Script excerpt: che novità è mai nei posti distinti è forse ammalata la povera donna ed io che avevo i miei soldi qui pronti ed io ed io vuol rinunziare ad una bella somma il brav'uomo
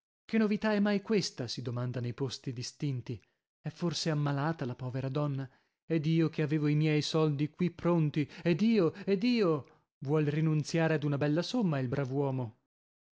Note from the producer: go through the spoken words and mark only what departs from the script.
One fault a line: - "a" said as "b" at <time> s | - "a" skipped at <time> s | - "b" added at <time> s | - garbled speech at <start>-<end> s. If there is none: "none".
- "questa si domanda" added at 1.0 s